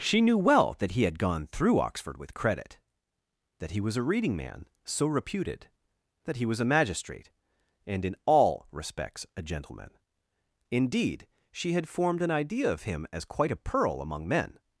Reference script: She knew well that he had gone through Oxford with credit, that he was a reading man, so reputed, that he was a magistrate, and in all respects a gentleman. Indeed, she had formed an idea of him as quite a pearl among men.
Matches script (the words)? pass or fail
pass